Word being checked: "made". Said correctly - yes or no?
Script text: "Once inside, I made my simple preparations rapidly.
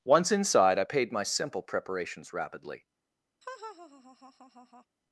no